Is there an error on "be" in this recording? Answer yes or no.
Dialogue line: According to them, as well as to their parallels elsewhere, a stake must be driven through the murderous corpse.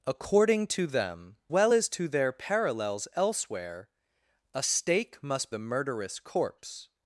yes